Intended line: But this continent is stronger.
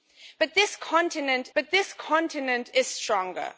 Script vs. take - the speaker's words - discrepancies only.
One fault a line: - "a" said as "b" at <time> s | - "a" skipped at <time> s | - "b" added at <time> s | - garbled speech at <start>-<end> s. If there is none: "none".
- "but this continent" added at 1.5 s